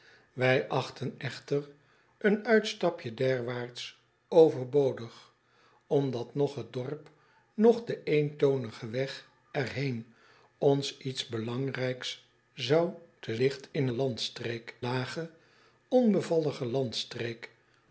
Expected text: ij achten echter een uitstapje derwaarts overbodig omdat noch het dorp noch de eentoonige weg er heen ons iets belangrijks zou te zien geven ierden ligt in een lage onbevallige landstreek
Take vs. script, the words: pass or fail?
fail